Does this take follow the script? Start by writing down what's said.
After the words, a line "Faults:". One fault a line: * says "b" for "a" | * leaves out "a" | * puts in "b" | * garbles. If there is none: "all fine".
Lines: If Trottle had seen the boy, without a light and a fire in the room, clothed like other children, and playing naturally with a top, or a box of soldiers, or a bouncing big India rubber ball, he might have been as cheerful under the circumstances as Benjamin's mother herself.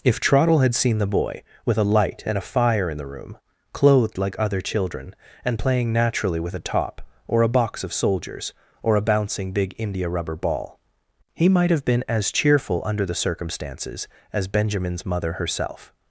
If Trottle had seen the boy, with a light and a fire in the room, clothed like other children, and playing naturally with a top, or a box of soldiers, or a bouncing big India rubber ball, he might have been as cheerful under the circumstances as Benjamin's mother herself.
Faults:
* says "with" for "without"